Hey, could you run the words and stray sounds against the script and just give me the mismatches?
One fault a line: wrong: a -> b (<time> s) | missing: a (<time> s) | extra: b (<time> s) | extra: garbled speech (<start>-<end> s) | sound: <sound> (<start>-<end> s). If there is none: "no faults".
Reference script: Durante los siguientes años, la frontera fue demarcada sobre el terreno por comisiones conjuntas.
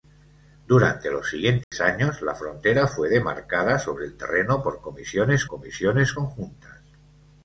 sound: dropout (1.6-1.7 s)
extra: comisiones (5.5 s)